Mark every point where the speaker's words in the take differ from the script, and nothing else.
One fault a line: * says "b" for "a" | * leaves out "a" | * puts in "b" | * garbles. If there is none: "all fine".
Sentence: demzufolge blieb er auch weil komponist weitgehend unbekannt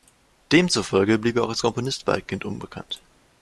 * says "als" for "weil"